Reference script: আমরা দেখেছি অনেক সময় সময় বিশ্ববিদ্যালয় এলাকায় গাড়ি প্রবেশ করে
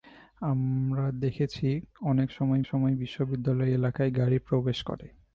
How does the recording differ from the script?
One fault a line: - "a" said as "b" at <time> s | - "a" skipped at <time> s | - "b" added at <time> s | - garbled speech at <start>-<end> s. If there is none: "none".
none